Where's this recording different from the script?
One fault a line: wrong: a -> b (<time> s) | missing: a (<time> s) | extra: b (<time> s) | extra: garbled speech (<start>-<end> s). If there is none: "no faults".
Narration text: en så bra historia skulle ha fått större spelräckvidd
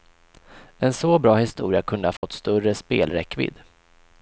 wrong: skulle -> kunde (1.8 s)